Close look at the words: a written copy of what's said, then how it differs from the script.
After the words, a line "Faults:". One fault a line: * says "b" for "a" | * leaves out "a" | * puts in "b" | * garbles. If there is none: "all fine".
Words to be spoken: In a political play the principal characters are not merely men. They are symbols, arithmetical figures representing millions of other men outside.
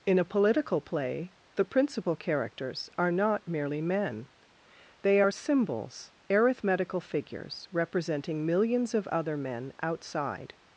In a political play the principal characters are not merely men. They are symbols, arithmetical figures representing millions of other men outside.
Faults:
all fine